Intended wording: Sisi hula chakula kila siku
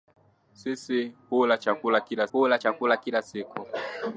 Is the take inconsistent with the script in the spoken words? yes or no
yes